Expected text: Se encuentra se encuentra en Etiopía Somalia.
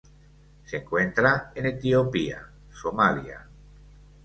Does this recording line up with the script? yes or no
no